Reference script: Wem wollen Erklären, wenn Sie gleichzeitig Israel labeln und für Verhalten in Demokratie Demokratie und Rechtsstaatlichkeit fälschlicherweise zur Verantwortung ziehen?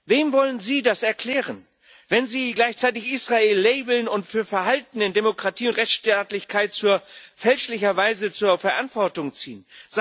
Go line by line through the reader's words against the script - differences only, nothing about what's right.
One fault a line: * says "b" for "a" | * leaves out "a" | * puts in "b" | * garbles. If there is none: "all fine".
* puts in "Sie das"
* leaves out "Demokratie"